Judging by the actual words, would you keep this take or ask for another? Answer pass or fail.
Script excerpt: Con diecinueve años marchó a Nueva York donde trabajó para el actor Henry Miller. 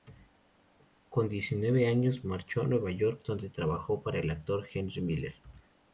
pass